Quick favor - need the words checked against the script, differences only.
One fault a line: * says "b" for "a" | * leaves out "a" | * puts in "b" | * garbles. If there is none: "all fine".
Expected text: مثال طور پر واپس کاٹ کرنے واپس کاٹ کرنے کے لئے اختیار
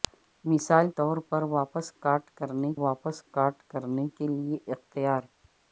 all fine